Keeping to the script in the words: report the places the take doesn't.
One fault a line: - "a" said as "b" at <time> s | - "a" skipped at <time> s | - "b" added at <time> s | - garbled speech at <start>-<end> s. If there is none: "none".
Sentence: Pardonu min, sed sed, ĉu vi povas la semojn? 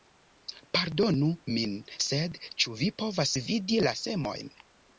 - "sed" skipped at 2.4 s
- "vidi" added at 3.5 s